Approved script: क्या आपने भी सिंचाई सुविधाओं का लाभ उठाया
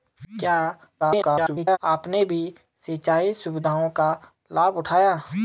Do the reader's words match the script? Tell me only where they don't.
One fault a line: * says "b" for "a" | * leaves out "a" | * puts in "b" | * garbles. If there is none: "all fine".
* garbles